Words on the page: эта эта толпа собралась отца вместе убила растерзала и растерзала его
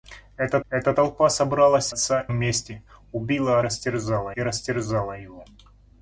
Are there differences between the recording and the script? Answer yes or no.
no